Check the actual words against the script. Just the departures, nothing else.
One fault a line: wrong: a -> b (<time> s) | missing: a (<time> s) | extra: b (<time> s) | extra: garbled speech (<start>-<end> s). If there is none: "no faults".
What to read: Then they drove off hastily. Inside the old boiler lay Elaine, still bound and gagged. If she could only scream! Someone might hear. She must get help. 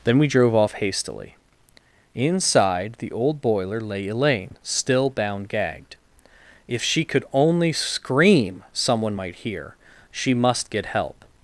wrong: they -> we (0.2 s)
missing: and (5.5 s)